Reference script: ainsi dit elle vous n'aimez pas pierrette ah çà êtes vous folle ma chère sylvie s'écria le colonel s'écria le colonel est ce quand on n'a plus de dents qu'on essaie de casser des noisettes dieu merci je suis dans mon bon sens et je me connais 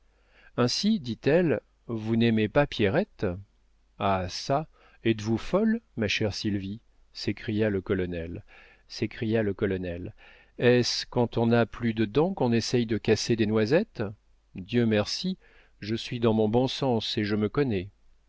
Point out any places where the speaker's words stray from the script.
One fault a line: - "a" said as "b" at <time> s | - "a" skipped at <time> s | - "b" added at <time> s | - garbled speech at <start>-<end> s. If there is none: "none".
none